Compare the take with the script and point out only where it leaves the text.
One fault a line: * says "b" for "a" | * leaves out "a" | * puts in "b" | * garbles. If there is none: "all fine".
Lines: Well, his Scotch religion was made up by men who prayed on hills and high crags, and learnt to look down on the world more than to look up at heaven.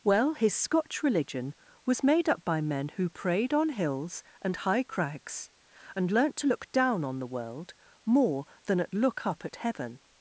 * says "at" for "to"